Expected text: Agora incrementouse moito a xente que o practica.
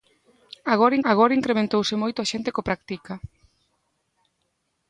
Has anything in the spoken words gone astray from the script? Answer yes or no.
yes